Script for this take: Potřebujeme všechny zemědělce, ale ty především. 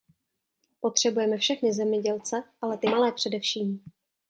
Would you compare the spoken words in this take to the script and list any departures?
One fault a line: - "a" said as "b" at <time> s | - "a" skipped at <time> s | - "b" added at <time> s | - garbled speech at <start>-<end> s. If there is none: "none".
- "malé" added at 2.8 s